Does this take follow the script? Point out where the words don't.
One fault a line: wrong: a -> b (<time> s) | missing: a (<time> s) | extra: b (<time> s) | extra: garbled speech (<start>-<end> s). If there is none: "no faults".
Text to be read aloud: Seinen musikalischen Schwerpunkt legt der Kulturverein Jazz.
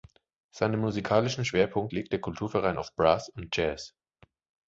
extra: auf Brass und (2.8 s)